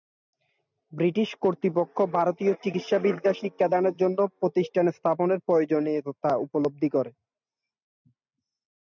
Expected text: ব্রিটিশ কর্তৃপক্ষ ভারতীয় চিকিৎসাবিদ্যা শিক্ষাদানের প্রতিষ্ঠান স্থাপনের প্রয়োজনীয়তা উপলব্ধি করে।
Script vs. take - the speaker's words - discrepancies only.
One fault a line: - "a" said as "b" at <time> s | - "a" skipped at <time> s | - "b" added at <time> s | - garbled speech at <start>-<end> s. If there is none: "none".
- "জন্য" added at 4.0 s